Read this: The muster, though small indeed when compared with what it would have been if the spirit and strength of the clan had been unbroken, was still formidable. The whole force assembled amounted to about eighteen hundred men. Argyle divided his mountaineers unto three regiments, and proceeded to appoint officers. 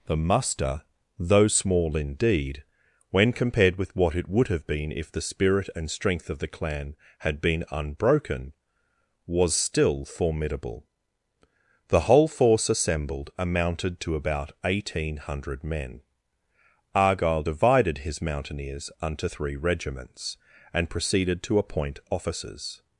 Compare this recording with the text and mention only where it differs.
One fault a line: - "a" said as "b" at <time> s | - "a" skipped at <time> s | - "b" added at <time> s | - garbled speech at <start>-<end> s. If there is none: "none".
none